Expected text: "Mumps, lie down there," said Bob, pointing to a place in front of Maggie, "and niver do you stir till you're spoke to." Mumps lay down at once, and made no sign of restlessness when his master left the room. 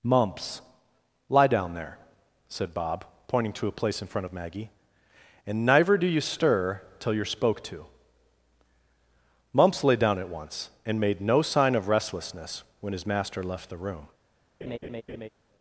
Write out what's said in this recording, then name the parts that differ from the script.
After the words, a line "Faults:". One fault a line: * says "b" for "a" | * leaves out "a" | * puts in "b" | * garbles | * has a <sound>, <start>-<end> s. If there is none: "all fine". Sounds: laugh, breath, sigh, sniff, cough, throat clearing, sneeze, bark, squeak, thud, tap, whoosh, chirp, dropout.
"Mumps, lie down there," said Bob, pointing to a place in front of Maggie, "and neither do you stir till you're spoke to." Mumps lay down at once, and made no sign of restlessness when his master left the room.
Faults:
* says "neither" for "niver"
* has a laugh, 14.6-15.3 s